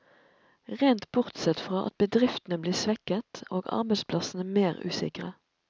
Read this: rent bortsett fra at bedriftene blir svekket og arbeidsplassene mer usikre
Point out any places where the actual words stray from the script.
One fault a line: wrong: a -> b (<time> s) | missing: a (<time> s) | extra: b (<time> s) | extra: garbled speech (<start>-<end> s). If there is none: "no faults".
no faults